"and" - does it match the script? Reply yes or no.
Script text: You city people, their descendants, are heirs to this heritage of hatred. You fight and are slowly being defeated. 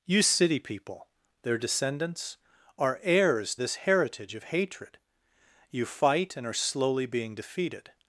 yes